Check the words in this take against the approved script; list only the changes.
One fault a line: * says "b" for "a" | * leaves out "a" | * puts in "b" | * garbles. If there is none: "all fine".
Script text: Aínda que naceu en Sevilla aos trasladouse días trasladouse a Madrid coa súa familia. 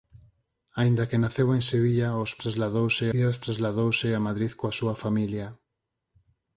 all fine